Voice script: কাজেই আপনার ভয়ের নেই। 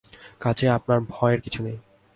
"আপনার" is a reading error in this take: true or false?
false